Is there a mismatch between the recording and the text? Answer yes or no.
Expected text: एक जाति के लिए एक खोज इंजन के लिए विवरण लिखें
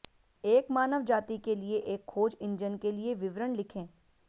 yes